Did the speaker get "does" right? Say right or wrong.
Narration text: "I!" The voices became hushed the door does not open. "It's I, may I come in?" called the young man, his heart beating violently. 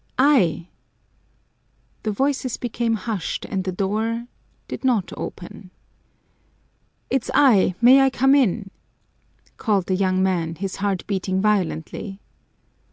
wrong